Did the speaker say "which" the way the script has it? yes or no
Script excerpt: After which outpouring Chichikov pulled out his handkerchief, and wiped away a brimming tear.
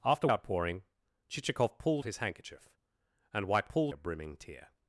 no